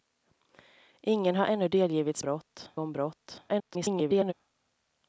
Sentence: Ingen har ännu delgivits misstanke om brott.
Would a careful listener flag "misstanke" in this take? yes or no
yes